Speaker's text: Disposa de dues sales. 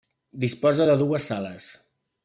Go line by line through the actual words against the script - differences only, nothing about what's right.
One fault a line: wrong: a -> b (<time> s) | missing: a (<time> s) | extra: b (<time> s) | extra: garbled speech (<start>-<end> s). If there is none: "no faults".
no faults